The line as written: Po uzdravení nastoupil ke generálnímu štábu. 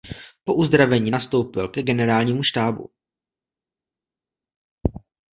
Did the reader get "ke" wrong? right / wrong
right